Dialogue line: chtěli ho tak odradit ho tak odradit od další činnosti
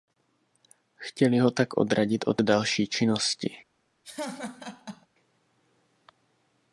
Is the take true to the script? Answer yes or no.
no